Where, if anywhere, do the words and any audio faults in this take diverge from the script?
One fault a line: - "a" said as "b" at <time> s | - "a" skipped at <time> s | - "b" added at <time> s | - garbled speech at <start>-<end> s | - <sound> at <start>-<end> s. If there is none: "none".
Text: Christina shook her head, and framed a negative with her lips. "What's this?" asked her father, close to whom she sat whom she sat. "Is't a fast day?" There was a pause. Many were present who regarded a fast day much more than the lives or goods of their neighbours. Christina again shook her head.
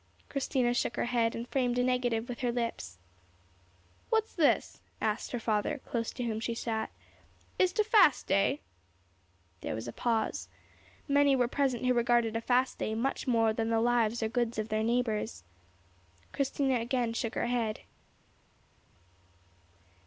- "whom she sat" skipped at 6.9 s